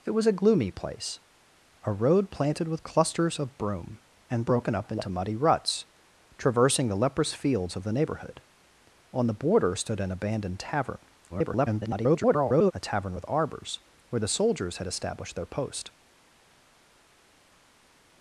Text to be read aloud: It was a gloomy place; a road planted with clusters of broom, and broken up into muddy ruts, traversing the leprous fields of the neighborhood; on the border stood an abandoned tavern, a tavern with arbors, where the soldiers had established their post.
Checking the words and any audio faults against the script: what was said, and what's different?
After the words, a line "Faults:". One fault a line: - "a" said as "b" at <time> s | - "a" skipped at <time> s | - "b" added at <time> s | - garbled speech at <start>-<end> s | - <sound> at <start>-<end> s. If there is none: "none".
It was a gloomy place; a road planted with clusters of broom, and broken up into muddy ruts, traversing the leprous fields of the neighborhood; on the border stood an abandoned tavern, [garbled] a tavern with arbors, where the soldiers had established their post.
Faults:
- garbled speech at 11.3-12.7 s